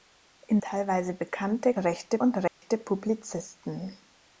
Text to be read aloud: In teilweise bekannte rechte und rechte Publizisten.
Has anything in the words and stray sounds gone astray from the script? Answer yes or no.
yes